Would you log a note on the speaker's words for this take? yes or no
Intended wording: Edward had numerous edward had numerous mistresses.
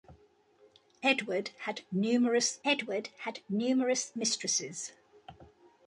no